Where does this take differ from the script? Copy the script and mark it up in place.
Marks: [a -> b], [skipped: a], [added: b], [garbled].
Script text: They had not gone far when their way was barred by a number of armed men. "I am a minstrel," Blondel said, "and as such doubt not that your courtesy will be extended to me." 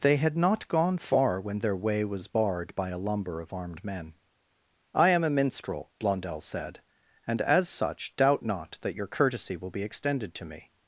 They had not gone far when their way was barred by a [number -> lumber] of armed men. "I am a minstrel," Blondel said, "and as such doubt not that your courtesy will be extended to me."